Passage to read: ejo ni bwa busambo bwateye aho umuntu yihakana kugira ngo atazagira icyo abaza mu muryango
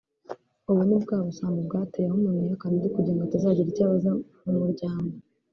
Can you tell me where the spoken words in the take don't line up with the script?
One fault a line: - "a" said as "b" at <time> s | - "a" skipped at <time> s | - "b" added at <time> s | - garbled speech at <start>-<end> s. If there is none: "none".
- "ejo" said as "ubu" at 0.7 s
- "undi" added at 2.8 s